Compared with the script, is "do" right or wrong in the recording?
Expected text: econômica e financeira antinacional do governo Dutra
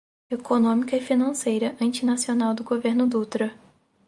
right